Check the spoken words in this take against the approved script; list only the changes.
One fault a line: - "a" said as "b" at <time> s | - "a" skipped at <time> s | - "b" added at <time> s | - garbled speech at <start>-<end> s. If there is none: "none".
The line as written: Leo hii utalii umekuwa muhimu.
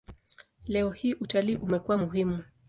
none